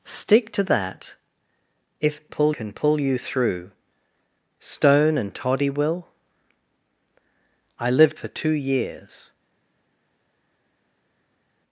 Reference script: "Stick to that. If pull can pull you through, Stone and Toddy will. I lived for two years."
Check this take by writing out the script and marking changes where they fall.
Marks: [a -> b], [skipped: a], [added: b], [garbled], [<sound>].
"Stick to that. If pull can pull you through, Stone and Toddy will. I lived for two years."